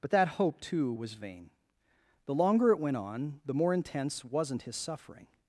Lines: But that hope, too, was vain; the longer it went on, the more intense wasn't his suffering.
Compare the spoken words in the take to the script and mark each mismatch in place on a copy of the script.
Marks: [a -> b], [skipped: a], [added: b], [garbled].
But that hope, too, was vain; the longer it went on, the more intense wasn't his suffering.